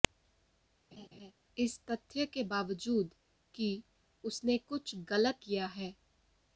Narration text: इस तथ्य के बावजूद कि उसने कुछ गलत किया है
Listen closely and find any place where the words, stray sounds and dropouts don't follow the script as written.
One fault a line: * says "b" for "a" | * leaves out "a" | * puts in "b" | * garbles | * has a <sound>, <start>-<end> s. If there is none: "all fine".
* has a laugh, 0.9-1.3 s